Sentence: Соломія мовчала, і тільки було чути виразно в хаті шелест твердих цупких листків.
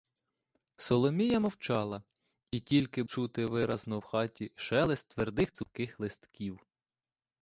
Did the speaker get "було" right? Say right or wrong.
wrong